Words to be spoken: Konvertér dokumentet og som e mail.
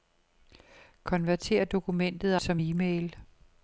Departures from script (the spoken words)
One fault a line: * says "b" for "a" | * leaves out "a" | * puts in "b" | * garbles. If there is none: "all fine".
all fine